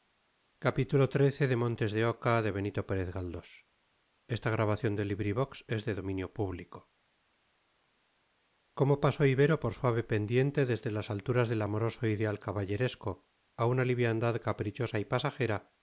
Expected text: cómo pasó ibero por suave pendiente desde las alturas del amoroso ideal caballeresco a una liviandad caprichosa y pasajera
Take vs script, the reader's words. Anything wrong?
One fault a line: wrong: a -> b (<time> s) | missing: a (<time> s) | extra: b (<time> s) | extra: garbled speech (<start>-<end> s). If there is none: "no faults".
no faults